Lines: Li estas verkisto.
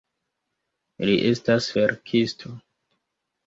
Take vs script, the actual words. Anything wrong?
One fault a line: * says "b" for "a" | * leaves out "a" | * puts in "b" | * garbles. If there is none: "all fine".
all fine